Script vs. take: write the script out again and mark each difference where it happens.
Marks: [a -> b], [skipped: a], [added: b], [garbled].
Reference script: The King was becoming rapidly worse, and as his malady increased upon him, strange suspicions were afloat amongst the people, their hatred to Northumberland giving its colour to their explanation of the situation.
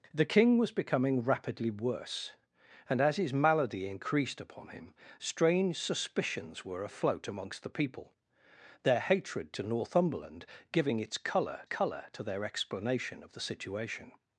The King was becoming rapidly worse, and as his malady increased upon him, strange suspicions were afloat amongst the people, their hatred to Northumberland giving its colour [added: colour] to their explanation of the situation.